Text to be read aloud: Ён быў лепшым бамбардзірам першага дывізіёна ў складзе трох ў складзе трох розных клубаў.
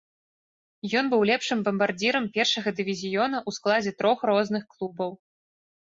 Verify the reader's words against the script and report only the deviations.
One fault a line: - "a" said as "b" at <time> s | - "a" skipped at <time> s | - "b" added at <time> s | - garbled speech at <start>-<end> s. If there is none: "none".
- "ў складзе трох" skipped at 4.2 s